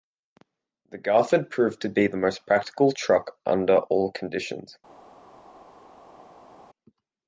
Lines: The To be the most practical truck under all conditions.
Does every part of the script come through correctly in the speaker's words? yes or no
no